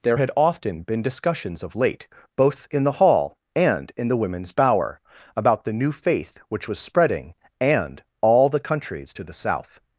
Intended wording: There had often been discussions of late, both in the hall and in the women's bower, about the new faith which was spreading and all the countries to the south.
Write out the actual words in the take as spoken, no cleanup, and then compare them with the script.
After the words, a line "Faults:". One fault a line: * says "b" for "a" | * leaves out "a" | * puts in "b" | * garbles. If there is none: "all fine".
There had often been discussions of late, both in the hall and in the women's bower, about the new faith which was spreading and all the countries to the south.
Faults:
all fine